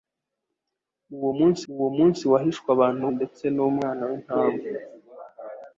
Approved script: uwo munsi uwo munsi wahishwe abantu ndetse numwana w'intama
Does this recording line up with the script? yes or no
yes